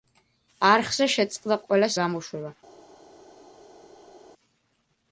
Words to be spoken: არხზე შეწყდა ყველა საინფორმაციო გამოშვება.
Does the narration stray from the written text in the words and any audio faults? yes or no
yes